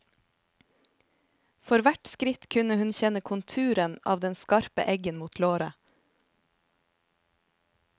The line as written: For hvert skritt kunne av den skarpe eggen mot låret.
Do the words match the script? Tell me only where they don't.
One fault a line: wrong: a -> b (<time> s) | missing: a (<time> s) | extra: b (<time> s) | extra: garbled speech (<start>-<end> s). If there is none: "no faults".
extra: hun kjenne konturen (2.8 s)